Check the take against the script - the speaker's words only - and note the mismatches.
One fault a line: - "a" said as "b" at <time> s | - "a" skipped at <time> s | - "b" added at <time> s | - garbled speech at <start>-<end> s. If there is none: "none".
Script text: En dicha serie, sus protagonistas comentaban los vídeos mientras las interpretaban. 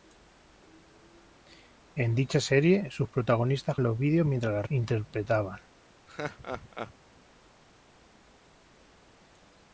- "comentaban" skipped at 3.8 s
- "las" skipped at 4.7 s